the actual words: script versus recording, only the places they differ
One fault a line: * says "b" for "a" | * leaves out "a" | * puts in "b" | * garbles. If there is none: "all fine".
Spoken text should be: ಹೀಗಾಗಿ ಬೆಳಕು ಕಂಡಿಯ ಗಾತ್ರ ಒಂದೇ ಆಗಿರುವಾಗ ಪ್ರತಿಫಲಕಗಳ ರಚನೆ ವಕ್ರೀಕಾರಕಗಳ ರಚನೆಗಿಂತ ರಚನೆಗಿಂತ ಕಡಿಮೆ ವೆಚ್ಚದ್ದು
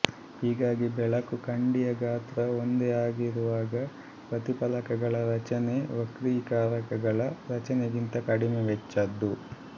* leaves out "ರಚನೆಗಿಂತ"